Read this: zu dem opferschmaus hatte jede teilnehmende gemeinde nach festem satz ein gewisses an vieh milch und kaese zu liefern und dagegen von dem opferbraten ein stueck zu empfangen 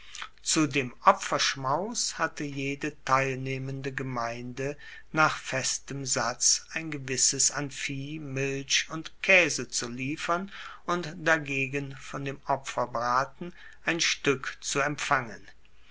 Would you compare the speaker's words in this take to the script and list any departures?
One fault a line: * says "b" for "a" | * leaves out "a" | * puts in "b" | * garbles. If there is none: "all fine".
all fine